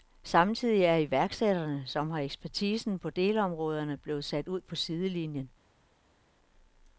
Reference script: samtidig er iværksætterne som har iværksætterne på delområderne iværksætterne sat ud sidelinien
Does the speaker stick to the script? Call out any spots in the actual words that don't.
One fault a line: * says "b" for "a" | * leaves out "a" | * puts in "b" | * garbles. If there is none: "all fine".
* says "ekspertisen" for "iværksætterne"
* says "blevet" for "iværksætterne"
* puts in "på"